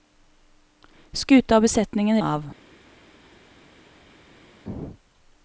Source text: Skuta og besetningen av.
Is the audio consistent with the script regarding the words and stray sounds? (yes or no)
yes